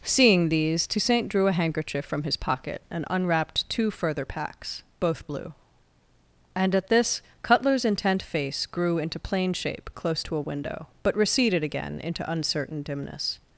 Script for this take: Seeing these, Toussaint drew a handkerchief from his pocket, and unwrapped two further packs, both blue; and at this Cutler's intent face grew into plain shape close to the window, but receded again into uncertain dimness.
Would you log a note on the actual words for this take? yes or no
yes